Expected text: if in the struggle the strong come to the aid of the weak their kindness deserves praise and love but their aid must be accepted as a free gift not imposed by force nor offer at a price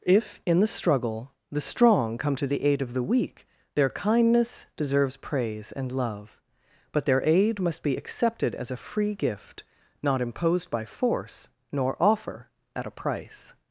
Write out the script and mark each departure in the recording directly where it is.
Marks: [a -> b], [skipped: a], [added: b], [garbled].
if in the struggle the strong come to the aid of the weak their kindness deserves praise and love but their aid must be accepted as a free gift not imposed by force nor offer at a price